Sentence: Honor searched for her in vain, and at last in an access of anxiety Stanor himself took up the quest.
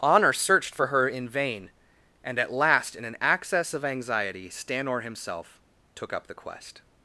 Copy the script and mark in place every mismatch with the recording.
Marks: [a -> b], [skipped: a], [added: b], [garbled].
Honor searched for her in vain, and at last in an access of anxiety Stanor himself took up the quest.